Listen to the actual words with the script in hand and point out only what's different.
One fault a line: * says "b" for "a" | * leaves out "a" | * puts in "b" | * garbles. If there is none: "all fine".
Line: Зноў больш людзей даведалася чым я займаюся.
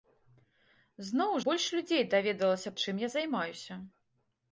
all fine